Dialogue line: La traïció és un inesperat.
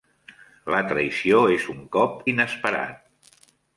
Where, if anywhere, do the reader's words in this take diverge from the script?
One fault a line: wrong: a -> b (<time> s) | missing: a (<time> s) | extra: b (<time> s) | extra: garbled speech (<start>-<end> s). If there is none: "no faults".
extra: cop (2.0 s)